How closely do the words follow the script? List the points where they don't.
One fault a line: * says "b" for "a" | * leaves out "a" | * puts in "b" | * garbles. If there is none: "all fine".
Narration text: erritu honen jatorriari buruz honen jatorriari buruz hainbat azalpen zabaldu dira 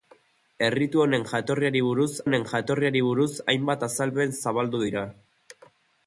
all fine